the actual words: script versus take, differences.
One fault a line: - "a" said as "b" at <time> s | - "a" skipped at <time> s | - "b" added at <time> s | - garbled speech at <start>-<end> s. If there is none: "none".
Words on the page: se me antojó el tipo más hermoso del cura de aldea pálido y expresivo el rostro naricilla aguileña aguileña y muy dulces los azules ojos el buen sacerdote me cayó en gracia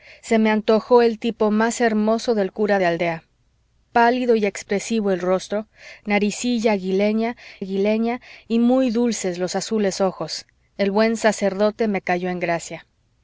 none